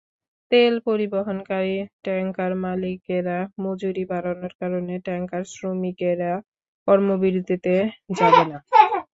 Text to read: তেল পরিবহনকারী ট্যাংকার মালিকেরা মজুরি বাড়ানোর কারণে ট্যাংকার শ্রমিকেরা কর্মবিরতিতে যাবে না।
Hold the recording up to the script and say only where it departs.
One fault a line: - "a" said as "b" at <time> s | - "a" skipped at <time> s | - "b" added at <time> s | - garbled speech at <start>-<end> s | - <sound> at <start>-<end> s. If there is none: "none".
none